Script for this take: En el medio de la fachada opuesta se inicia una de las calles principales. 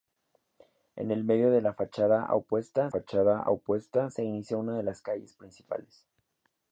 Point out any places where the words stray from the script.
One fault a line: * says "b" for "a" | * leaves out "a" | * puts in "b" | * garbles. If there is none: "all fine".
* puts in "fachada opuesta"